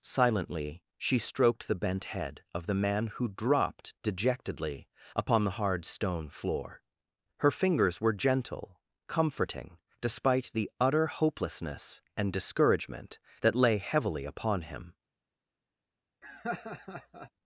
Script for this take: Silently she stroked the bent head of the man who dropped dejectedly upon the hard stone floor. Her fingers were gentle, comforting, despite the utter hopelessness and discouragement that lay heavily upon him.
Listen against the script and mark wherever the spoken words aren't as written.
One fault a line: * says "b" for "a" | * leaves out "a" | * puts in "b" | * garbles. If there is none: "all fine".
all fine